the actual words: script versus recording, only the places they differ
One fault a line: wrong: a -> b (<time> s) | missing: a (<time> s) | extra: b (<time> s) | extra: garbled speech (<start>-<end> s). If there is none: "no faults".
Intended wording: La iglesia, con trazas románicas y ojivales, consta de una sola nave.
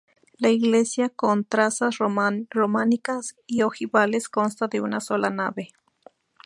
no faults